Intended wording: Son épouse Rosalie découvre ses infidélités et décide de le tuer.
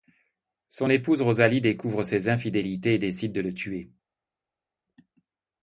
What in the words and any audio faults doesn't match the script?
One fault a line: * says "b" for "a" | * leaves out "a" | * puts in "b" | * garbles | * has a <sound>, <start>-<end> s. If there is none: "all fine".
all fine